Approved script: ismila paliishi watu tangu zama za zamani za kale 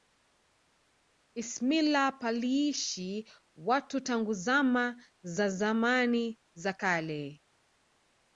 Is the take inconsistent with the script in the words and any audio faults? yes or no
no